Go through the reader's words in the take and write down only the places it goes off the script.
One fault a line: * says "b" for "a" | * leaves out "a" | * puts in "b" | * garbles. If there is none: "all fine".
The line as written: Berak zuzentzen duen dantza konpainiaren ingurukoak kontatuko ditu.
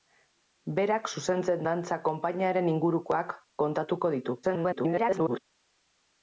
* leaves out "duen"
* garbles